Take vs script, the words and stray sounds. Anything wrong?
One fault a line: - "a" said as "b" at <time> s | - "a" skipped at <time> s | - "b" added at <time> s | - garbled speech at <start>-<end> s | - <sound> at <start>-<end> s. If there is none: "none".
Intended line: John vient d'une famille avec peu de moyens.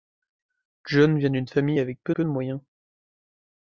- "peu" added at 2.1 s